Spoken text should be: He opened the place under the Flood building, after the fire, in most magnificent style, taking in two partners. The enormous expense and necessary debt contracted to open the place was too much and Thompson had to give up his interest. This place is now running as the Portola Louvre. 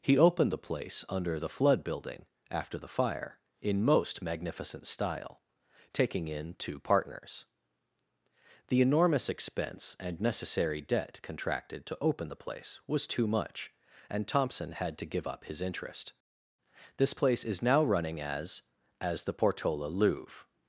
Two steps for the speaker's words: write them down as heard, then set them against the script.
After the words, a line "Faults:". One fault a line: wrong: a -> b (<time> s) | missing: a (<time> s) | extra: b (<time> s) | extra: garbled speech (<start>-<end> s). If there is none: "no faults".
He opened the place under the Flood building, after the fire, in most magnificent style, taking in two partners. The enormous expense and necessary debt contracted to open the place was too much and Thompson had to give up his interest. This place is now running as as the Portola Louvre.
Faults:
extra: as (19.0 s)